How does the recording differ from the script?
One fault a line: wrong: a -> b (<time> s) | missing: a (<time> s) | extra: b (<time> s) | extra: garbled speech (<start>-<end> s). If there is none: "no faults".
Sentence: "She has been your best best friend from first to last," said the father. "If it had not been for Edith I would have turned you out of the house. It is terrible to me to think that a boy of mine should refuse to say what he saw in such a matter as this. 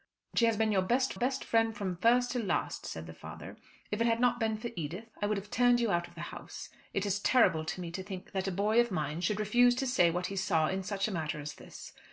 no faults